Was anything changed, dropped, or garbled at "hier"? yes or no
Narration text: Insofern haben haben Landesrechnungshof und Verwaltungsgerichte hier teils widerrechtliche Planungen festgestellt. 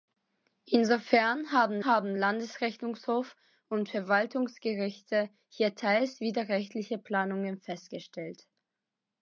no